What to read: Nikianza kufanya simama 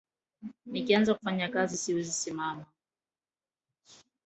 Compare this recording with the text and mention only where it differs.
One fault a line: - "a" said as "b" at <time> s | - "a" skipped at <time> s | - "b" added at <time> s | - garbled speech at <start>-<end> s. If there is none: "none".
- "kazi siwezi" added at 1.5 s